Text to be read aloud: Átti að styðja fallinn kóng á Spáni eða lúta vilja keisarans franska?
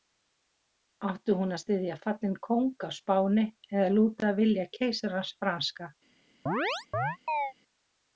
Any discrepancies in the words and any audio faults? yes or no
yes